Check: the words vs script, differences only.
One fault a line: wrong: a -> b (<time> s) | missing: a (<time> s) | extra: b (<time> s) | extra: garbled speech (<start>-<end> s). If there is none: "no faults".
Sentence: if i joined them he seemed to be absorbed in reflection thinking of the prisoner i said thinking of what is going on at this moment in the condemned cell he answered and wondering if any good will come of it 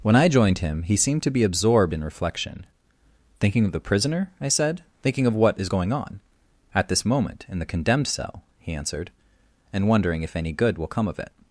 wrong: if -> when (0.0 s)
wrong: them -> him (0.6 s)